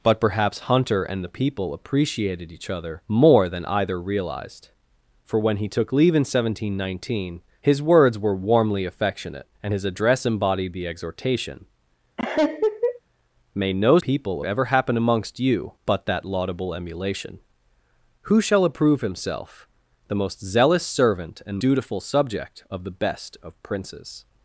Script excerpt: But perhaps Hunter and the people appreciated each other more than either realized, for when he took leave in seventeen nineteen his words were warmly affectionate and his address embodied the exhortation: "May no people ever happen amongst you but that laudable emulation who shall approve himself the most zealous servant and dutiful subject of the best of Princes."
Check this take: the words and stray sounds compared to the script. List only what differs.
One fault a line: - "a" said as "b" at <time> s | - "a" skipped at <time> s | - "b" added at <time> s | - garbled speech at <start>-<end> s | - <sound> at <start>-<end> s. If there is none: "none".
- laugh at 12.2-13.0 s